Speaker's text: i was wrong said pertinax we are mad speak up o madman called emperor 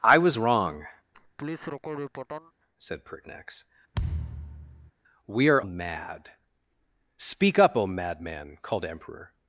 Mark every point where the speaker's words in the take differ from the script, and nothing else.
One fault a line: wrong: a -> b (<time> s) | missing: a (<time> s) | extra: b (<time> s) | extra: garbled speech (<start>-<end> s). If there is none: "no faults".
no faults